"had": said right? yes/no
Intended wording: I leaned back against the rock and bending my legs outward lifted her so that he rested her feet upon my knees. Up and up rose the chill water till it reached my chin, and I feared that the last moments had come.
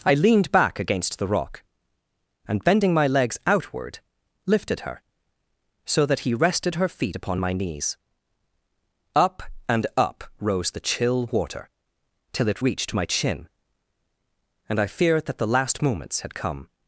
yes